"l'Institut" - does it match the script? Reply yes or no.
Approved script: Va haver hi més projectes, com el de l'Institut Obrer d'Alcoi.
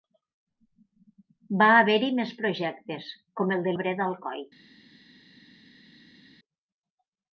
no